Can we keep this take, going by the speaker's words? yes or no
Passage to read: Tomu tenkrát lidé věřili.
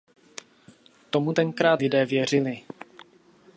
yes